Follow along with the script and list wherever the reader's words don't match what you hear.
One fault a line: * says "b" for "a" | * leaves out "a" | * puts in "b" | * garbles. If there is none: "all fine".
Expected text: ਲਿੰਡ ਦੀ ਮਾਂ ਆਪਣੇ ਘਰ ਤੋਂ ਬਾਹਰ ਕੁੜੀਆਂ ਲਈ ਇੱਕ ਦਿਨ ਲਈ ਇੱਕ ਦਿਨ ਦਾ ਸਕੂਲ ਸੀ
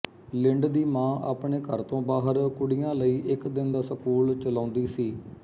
* leaves out "ਲਈ ਇੱਕ ਦਿਨ"
* puts in "ਚਲਾਉਂਦੀ"